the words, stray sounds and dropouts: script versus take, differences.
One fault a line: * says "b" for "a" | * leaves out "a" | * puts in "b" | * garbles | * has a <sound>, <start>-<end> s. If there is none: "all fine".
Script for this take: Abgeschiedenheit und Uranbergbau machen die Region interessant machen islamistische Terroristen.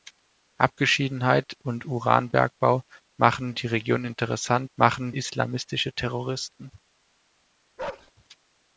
* has a bark, 7.8-8.1 s